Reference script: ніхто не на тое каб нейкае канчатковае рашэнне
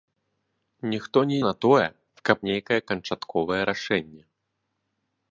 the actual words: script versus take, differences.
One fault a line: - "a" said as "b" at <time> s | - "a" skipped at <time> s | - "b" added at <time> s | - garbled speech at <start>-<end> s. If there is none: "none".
none